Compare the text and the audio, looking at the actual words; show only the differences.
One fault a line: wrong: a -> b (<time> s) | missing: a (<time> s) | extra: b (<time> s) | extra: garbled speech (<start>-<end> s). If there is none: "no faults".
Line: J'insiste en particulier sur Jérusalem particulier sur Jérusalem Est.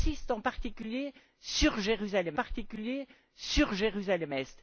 no faults